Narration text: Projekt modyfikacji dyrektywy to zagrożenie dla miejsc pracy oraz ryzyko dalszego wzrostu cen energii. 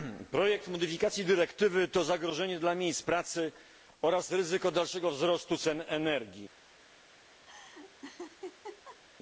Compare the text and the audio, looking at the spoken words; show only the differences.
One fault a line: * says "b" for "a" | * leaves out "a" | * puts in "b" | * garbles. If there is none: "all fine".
all fine